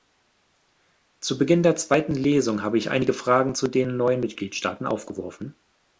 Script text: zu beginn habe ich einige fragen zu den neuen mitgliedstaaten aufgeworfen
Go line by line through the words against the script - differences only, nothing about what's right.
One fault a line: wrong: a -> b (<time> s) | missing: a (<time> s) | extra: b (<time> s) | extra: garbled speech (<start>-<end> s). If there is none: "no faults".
extra: der zweiten lesung (1.6 s)